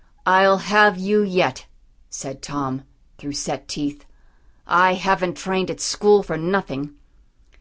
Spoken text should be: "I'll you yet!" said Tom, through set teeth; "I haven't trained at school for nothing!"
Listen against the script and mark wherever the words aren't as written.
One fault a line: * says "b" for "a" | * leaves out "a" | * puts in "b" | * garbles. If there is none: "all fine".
* puts in "have"